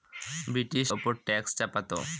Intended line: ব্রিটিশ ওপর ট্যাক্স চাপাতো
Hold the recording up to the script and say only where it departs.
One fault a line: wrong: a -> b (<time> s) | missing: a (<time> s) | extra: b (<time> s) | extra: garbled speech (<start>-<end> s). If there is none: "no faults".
no faults